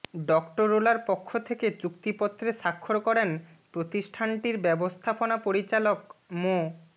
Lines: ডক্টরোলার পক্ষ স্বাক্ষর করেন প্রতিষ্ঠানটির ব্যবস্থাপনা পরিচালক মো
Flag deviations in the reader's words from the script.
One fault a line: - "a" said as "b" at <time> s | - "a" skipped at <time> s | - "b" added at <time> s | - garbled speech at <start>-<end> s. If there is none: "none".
- "থেকে চুক্তিপত্রে" added at 1.5 s